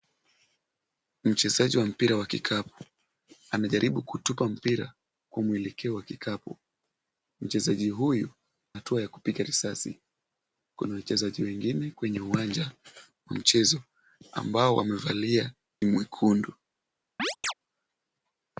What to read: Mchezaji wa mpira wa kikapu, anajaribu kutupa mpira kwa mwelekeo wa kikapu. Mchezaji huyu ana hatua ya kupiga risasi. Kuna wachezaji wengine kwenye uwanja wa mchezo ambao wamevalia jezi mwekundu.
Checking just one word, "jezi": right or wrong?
wrong